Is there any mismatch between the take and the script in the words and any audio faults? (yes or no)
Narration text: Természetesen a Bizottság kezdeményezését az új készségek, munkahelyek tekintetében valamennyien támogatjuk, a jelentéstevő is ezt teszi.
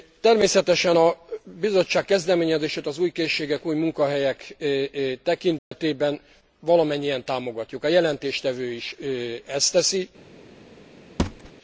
yes